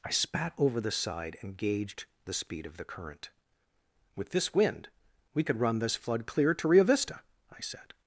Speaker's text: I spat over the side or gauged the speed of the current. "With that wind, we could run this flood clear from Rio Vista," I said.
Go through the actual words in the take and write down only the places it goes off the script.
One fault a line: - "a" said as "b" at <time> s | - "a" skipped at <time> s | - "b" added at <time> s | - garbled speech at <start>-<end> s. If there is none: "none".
- "or" said as "and" at 1.4 s
- "that" said as "this" at 4.3 s
- "from" said as "to" at 6.5 s